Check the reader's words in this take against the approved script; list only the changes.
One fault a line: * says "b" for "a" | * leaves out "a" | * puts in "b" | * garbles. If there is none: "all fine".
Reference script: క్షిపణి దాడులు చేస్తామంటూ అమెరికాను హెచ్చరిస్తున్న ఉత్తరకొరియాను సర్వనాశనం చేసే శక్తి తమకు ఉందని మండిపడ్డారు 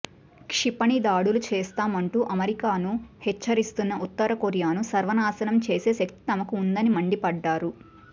all fine